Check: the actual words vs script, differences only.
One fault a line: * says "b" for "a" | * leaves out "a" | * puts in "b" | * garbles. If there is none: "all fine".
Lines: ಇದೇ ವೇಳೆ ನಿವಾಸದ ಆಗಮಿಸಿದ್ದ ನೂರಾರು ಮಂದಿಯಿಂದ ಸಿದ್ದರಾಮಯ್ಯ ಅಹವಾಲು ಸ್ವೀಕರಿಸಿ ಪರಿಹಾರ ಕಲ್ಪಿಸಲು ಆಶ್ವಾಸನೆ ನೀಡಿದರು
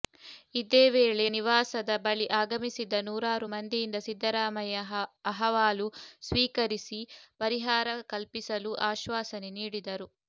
* puts in "ಬಳಿ"